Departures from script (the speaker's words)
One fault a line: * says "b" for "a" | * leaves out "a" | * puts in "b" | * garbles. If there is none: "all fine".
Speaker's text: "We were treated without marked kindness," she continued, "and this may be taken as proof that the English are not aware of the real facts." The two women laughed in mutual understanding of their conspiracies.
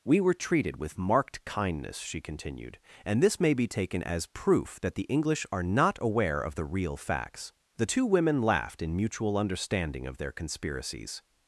* says "with" for "without"